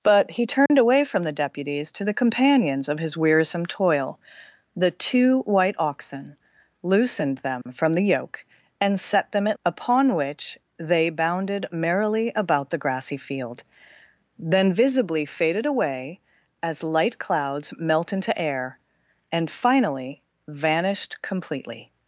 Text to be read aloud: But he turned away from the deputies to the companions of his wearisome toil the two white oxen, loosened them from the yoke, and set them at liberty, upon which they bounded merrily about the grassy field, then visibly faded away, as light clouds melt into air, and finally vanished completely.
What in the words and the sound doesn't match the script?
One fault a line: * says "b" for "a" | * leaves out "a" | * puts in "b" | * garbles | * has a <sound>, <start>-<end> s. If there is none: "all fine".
* has a dropout, 0.7-0.7 s
* has a dropout, 7.6-7.7 s
* leaves out "liberty"